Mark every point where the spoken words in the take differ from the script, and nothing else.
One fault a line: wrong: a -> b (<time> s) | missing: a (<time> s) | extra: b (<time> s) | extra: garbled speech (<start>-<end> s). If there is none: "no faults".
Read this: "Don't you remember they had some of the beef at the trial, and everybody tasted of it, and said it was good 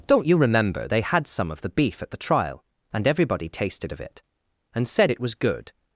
no faults